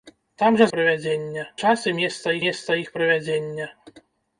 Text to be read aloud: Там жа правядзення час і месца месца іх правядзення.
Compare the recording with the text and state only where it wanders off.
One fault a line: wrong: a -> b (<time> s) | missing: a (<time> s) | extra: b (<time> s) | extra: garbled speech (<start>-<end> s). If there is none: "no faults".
no faults